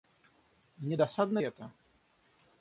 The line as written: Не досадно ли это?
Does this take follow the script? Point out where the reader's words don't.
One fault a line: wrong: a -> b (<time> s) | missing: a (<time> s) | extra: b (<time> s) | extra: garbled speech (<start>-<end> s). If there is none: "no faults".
missing: ли (1.4 s)